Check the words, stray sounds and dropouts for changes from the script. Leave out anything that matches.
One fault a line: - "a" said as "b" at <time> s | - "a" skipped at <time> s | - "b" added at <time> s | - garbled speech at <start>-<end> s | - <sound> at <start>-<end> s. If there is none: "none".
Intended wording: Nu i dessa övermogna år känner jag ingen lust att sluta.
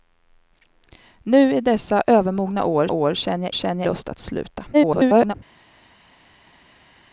- "år" added at 2.9 s
- "ingen" said as "känner" at 3.5 s
- garbled speech at 4.7-5.3 s